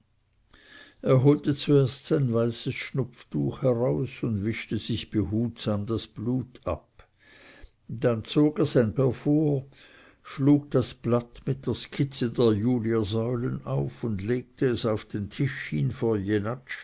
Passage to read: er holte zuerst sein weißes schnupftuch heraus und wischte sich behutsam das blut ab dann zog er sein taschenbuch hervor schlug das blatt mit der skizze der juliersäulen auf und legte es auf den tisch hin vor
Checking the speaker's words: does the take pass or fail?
fail